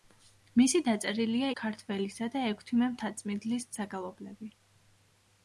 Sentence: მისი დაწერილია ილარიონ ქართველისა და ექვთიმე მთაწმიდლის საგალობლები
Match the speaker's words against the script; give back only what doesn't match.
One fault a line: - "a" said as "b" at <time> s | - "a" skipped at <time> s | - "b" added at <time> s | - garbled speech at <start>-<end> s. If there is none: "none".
- "ილარიონ" skipped at 1.5 s